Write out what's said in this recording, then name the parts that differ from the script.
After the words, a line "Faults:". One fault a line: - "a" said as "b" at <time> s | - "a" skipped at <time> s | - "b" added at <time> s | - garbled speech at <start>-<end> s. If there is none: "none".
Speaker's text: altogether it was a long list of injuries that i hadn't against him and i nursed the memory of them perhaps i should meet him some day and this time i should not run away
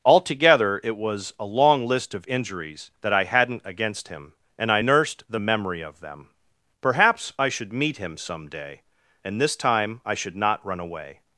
altogether it was a long list of injuries that i hadn't against him and i nursed the memory of them perhaps i should meet him some day and this time i should not run away
Faults:
none